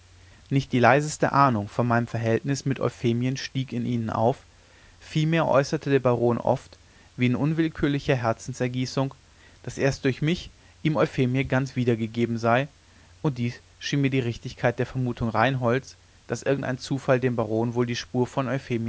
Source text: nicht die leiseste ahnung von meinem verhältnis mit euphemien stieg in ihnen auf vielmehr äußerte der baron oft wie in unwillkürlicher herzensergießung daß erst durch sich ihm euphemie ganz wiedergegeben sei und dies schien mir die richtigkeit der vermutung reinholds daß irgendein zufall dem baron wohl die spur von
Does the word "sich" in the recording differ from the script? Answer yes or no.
yes